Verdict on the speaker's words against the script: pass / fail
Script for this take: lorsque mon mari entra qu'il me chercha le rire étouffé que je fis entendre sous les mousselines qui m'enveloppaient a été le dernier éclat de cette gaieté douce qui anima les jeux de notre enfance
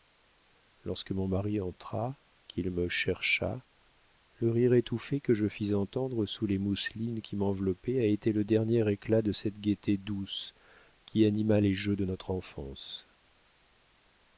pass